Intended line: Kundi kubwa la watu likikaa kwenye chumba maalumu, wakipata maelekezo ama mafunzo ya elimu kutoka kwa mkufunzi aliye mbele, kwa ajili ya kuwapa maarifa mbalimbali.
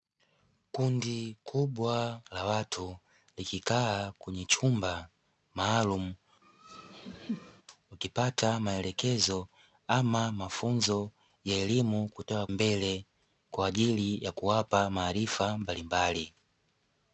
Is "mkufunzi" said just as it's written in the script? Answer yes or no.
no